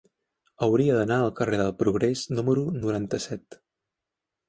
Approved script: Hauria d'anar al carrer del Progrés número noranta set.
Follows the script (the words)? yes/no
yes